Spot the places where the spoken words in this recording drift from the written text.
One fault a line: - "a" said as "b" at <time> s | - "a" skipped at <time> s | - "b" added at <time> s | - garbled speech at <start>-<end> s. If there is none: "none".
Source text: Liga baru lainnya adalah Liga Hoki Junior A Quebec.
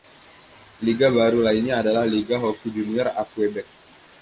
none